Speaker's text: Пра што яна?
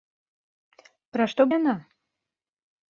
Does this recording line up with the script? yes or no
yes